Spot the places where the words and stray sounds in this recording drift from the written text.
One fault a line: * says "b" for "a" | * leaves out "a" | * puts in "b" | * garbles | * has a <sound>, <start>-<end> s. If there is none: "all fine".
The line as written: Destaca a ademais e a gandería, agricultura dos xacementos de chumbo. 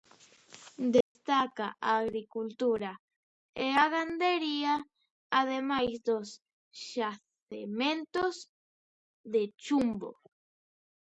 * has a dropout, 1.0-1.2 s
* says "agricultura" for "ademais"
* says "ademais" for "agricultura"